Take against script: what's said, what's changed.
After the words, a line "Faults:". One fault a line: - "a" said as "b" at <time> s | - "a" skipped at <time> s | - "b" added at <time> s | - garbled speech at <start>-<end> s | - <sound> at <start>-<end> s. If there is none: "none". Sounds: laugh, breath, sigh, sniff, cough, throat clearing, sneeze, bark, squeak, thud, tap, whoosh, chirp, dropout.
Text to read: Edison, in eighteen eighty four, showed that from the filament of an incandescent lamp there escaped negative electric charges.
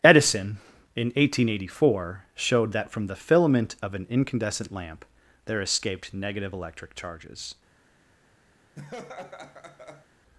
Edison, in eighteen eighty four, showed that from the filament of an incandescent lamp there escaped negative electric charges.
Faults:
- laugh at 8.8-10.1 s